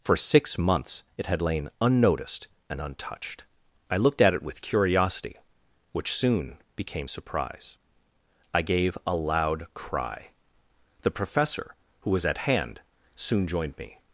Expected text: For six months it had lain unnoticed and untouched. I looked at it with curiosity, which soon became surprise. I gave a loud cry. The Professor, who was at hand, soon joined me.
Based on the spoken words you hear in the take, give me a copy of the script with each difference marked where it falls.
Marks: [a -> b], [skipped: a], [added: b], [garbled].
For six months it had lain unnoticed and untouched. I looked at it with curiosity, which soon became surprise. I gave a loud cry. The Professor, who was at hand, soon joined me.